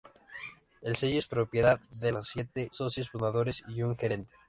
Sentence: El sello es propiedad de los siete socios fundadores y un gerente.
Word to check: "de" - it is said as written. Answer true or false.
true